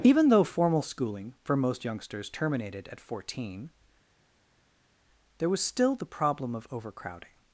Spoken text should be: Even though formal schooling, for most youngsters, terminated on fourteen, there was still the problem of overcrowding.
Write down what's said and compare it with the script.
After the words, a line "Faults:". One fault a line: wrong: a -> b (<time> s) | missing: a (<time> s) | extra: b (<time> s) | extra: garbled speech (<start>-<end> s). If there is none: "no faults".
Even though formal schooling, for most youngsters, terminated at fourteen, there was still the problem of overcrowding.
Faults:
wrong: on -> at (2.9 s)